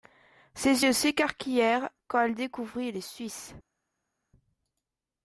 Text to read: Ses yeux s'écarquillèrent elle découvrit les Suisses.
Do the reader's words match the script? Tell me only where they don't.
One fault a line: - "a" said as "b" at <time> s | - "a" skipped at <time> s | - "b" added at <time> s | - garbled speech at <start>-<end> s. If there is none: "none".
- "quand" added at 2.1 s